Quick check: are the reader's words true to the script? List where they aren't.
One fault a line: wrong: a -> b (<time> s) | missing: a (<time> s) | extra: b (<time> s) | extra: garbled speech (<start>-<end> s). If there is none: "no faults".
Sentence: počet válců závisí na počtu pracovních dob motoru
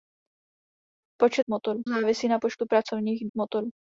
wrong: válců -> motoru (1.5 s)
missing: dob (3.3 s)